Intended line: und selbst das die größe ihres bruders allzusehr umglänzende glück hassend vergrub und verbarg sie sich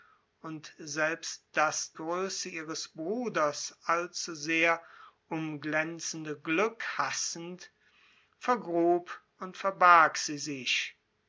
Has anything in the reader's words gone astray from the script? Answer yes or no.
yes